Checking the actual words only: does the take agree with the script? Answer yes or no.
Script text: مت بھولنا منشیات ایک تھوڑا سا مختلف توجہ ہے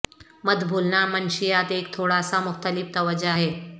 yes